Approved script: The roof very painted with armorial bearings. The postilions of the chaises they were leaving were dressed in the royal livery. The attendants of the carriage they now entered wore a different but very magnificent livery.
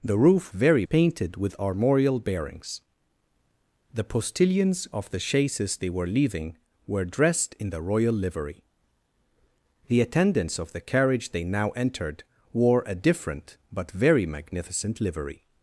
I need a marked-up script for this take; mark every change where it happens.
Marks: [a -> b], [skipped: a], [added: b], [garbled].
The roof very painted with armorial bearings. The postilions of the chaises they were leaving were dressed in the royal livery. The attendants of the carriage they now entered wore a different but very magnificent livery.